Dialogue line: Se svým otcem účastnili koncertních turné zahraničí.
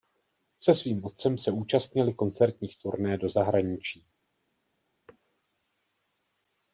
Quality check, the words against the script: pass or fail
fail